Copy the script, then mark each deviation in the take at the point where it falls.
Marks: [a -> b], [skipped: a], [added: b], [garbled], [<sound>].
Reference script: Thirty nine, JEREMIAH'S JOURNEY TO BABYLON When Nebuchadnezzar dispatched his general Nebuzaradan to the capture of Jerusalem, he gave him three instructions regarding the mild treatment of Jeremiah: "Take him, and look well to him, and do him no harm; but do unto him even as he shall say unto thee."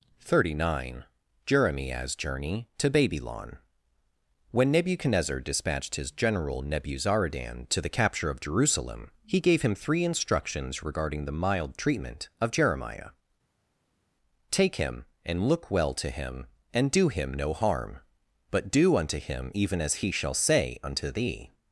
Thirty nine, JEREMIAH'S JOURNEY TO BABYLON When Nebuchadnezzar dispatched his general Nebuzaradan to the capture of Jerusalem, he gave him three instructions regarding the mild treatment of Jeremiah: "Take him, and look well to him, and do him no harm; but do unto him even as he shall say unto thee."